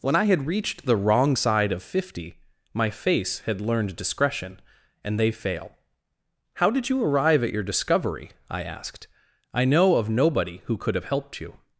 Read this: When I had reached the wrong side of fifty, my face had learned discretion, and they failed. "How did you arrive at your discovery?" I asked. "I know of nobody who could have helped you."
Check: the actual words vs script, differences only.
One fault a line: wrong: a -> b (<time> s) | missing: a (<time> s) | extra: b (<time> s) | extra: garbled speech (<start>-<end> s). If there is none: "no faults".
wrong: failed -> fail (5.3 s)